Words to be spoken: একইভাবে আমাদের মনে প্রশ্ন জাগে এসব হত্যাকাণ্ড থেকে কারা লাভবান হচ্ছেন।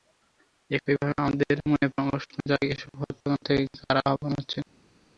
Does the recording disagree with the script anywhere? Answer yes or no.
no